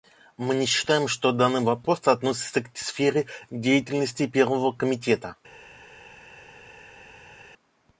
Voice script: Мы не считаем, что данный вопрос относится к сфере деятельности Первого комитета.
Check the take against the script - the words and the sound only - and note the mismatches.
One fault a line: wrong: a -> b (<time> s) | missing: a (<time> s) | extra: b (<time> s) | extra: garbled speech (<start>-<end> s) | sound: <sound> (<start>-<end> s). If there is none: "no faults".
no faults